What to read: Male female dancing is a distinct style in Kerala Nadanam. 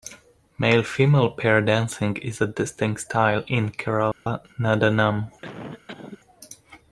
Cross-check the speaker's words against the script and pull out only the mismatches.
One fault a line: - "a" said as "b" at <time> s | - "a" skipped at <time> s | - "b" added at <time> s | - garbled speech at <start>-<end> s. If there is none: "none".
- "pair" added at 1.3 s